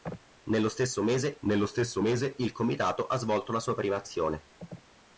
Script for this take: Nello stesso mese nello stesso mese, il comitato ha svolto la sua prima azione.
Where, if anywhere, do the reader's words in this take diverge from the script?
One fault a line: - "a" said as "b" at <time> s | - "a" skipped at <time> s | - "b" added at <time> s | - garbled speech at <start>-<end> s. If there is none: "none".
none